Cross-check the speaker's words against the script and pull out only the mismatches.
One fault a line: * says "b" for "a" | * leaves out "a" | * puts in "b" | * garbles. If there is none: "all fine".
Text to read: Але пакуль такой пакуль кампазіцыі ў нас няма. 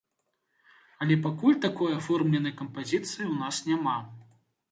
* says "аформленай" for "пакуль"